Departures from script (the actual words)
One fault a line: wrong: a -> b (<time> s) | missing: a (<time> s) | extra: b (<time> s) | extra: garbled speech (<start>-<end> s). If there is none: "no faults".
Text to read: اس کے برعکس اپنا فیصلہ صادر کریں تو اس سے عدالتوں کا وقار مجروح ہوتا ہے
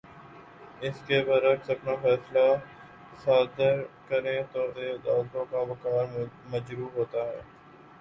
missing: اس (4.7 s)